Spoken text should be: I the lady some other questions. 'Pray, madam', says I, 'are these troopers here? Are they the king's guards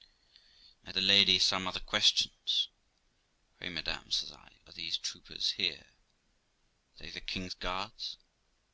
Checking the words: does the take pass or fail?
pass